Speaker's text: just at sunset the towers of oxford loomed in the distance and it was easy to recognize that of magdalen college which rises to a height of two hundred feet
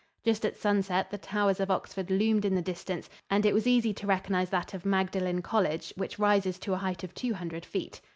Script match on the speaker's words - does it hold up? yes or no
yes